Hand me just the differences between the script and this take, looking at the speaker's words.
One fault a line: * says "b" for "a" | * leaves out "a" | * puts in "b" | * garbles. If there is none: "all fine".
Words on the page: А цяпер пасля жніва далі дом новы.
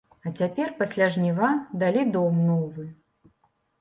all fine